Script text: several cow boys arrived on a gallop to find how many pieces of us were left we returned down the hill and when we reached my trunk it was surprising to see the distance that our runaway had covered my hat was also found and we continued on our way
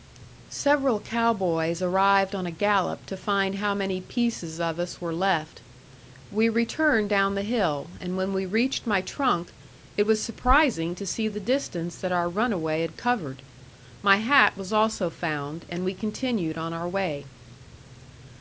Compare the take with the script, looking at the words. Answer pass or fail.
pass